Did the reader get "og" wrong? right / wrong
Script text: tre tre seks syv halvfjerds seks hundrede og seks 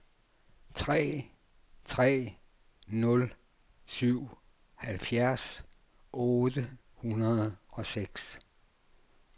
right